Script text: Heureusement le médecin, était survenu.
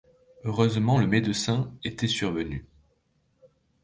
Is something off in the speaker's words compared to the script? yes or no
no